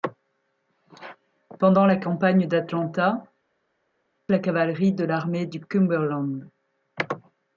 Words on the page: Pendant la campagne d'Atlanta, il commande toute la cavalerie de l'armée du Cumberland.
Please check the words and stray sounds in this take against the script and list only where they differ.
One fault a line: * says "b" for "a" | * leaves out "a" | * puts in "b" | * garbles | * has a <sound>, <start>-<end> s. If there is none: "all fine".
* leaves out "il commande toute"